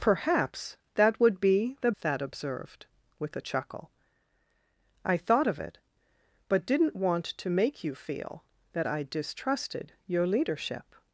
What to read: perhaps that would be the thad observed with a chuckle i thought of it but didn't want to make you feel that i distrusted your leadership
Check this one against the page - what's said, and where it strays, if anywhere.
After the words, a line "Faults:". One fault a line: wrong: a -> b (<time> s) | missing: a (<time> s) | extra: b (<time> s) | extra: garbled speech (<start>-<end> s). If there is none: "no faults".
perhaps that would be the thad observed with a chuckle i thought of it but didn't want to make you feel that i distrusted your leadership
Faults:
no faults